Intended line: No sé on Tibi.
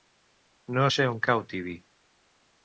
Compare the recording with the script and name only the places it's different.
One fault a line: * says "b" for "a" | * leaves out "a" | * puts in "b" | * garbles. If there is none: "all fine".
* puts in "cau"